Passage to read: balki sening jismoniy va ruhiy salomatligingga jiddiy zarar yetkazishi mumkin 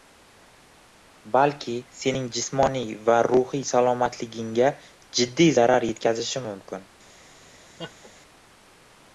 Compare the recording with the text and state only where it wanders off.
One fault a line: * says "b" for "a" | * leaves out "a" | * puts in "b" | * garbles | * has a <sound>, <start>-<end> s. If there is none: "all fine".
* has a laugh, 7.8-8.1 s